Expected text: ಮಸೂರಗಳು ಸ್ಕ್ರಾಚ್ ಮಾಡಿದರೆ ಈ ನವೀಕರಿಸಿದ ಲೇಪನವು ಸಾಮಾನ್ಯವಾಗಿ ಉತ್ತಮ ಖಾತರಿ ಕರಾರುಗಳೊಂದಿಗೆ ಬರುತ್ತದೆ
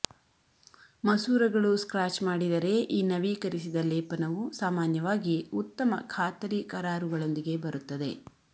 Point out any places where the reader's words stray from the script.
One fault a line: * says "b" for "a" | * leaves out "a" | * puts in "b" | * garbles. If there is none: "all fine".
all fine